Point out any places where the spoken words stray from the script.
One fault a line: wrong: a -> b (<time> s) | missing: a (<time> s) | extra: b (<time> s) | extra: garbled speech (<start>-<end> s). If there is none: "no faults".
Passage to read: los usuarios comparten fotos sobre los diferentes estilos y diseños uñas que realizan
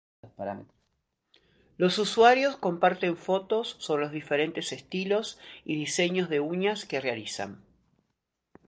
extra: de (6.3 s)